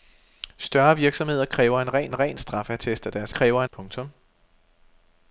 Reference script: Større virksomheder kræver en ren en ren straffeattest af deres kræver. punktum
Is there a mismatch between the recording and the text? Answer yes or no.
no